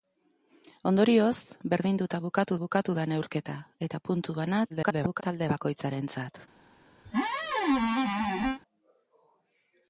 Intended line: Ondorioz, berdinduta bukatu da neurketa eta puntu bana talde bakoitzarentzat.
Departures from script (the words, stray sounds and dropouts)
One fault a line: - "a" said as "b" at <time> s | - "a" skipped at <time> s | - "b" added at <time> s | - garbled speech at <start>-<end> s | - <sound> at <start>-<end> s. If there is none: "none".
- "bukatu" added at 2.6 s
- garbled speech at 4.7-5.2 s
- squeak at 7.1-8.6 s